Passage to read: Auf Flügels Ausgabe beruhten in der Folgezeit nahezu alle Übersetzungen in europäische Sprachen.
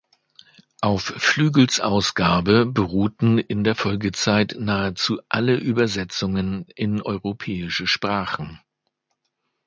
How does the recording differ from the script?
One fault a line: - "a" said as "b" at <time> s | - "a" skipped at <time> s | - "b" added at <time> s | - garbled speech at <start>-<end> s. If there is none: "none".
none